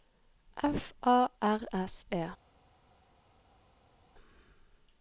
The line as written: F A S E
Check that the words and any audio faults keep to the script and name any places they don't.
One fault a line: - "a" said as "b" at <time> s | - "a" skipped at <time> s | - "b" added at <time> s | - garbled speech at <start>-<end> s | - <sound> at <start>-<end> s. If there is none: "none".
- "R" added at 1.4 s